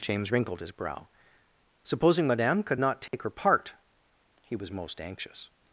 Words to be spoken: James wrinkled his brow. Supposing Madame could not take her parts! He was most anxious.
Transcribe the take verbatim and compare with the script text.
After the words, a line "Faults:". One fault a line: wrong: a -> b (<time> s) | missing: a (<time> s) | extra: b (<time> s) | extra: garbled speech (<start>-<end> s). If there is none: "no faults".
James wrinkled his brow. Supposing Madame could not take her part! He was most anxious.
Faults:
wrong: parts -> part (3.3 s)